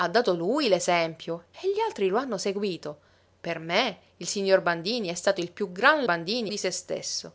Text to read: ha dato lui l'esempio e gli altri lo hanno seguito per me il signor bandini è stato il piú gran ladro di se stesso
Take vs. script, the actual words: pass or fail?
fail